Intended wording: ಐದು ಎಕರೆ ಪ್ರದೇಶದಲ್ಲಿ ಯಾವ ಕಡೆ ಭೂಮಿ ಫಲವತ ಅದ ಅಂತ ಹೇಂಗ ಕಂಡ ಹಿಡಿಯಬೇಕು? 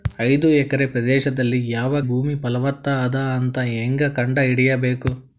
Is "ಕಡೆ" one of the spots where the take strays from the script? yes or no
yes